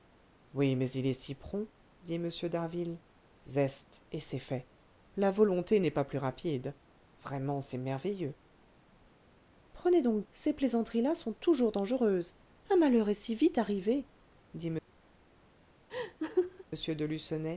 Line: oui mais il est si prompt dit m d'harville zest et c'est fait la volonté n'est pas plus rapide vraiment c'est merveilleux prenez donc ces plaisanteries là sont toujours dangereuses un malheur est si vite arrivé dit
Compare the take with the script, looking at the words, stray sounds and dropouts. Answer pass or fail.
fail